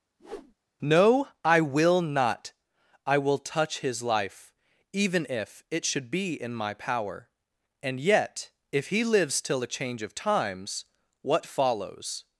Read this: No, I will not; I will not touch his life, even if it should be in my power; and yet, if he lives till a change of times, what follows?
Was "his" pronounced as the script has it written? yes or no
yes